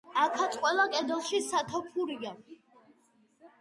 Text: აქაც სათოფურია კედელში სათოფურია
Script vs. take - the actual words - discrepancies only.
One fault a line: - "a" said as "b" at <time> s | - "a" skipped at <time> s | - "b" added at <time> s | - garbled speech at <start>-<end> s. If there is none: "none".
- "სათოფურია" said as "ყველა" at 0.6 s